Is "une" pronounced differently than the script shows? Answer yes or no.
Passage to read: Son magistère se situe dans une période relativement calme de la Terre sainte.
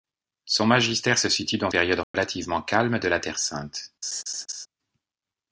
yes